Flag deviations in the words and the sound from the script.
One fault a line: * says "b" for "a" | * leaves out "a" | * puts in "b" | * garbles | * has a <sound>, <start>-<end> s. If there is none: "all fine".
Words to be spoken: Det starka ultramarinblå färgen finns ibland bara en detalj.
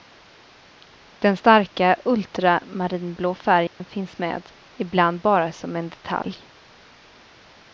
* says "Den" for "Det"
* has a dropout, 3.7-3.8 s
* puts in "med"
* puts in "som"